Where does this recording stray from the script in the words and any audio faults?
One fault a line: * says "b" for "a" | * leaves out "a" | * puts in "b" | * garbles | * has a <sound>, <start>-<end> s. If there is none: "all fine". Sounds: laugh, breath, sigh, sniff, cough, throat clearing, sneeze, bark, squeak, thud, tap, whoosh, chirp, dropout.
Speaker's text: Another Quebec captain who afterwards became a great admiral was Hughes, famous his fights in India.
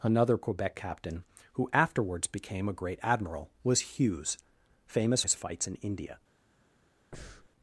* has a breath, 7.1-7.5 s